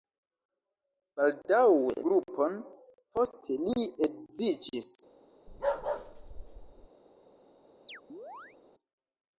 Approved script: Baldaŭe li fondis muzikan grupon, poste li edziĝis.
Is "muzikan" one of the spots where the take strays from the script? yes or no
yes